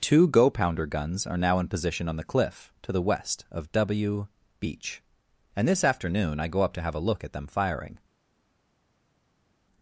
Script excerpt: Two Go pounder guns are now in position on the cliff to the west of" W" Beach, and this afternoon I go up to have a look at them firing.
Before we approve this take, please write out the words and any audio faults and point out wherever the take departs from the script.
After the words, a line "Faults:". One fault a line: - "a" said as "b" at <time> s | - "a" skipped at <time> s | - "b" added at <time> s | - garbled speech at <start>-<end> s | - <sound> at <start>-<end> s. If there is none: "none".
Two Go pounder guns are now in position on the cliff to the west of" W" Beach, and this afternoon I go up to have a look at them firing.
Faults:
none